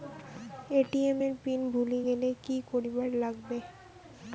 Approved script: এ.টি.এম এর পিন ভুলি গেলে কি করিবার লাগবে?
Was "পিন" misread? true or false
false